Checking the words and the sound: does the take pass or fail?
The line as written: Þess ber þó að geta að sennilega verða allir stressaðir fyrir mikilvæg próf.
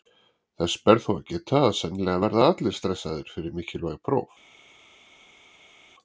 pass